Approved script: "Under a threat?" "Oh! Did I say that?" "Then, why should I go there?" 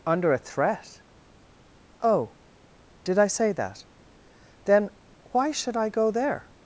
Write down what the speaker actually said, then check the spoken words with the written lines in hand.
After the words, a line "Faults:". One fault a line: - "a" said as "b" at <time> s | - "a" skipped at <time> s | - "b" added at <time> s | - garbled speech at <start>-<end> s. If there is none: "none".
"Under a threat?" "Oh! Did I say that?" "Then, why should I go there?"
Faults:
none